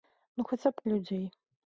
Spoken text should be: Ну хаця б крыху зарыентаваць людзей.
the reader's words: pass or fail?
fail